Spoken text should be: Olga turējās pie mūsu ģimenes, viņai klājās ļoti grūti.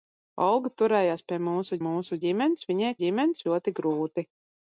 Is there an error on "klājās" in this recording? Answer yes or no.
yes